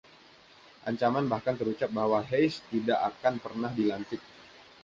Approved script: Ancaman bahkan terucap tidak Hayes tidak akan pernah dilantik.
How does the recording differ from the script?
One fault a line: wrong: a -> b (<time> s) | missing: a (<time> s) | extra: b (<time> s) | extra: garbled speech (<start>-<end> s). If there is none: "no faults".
wrong: tidak -> bahwa (1.9 s)